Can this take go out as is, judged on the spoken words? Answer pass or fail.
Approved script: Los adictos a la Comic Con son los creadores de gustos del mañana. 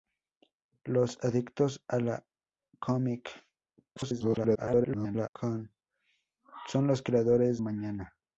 fail